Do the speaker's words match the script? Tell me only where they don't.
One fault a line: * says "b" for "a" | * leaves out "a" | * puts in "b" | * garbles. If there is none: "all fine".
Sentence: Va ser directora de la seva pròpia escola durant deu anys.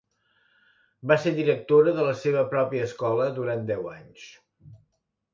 all fine